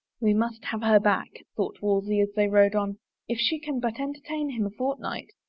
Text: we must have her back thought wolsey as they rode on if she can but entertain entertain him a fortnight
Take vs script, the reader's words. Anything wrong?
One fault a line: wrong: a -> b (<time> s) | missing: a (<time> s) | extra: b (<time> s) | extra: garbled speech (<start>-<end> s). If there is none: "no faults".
missing: entertain (4.5 s)